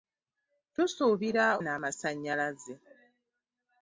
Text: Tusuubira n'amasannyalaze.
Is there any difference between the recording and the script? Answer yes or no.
no